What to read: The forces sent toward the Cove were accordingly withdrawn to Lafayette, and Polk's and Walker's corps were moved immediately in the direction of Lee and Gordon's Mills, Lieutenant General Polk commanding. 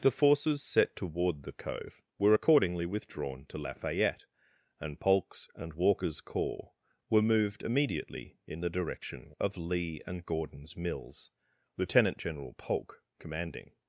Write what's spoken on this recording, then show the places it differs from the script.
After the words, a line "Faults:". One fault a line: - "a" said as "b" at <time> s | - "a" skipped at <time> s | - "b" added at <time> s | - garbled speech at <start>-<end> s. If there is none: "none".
The forces set toward the Cove were accordingly withdrawn to Lafayette, and Polk's and Walker's corps were moved immediately in the direction of Lee and Gordon's Mills, Lieutenant General Polk commanding.
Faults:
- "sent" said as "set" at 0.6 s